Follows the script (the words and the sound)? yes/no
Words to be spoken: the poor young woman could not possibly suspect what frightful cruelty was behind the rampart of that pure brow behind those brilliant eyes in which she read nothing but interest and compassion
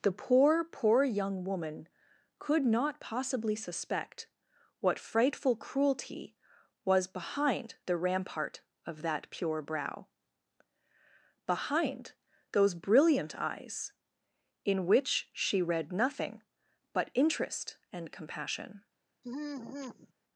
no